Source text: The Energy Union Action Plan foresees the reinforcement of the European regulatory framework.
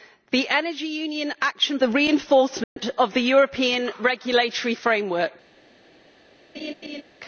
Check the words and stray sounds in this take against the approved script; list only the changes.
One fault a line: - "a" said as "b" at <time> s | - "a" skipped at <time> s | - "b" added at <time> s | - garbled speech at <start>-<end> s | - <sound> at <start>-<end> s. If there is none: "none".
- "Plan foresees" skipped at 1.8 s
- dropout at 2.6-2.8 s
- laugh at 6.5-7.0 s